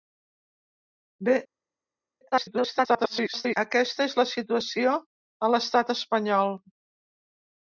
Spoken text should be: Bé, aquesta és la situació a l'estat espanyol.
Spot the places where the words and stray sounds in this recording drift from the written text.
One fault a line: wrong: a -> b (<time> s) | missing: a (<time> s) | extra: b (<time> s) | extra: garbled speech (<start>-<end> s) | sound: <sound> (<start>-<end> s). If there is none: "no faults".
extra: garbled speech (2.3-3.6 s)